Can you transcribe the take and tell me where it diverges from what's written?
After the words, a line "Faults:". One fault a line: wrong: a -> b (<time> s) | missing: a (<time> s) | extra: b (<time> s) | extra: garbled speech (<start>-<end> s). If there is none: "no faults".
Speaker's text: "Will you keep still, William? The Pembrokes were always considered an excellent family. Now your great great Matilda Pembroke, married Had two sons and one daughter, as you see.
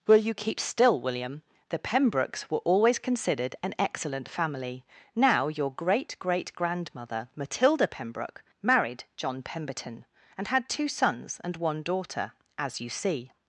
"Will you keep still, William? The Pembrokes were always considered an excellent family. Now your great great grandmother, Matilda Pembroke, married John Pemberton, and had two sons and one daughter, as you see.
Faults:
extra: grandmother (6.5 s)
extra: John Pemberton and (9.2 s)